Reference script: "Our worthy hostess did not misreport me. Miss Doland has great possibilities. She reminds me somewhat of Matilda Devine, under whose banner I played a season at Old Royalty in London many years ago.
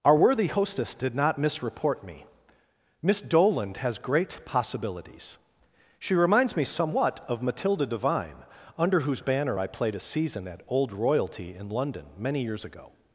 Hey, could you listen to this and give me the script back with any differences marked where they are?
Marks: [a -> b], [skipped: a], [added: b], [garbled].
"Our worthy hostess did not misreport me. Miss Doland has great possibilities. She reminds me somewhat of Matilda Devine, under whose banner I played a season at Old Royalty in London many years ago.